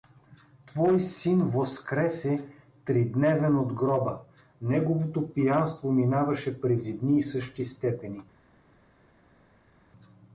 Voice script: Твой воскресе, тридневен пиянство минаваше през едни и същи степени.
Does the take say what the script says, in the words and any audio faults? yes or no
no